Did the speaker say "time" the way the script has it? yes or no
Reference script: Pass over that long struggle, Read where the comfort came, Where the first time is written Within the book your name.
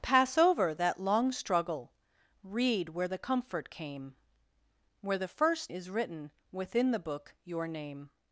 no